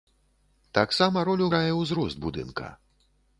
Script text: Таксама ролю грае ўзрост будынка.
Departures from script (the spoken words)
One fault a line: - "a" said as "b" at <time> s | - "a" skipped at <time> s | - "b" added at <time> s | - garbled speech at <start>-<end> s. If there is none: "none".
none